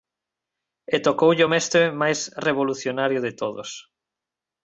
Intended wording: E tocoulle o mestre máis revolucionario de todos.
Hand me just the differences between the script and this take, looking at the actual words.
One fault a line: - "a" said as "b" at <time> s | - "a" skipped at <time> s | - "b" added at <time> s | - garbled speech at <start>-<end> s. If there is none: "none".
none